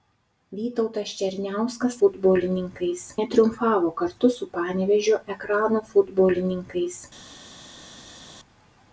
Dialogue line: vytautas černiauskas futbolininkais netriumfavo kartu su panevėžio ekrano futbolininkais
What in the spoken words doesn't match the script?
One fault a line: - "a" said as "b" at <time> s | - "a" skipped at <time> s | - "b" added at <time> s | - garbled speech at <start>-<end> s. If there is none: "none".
none